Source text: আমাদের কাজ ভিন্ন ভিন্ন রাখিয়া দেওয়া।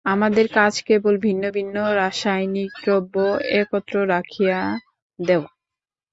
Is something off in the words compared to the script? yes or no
yes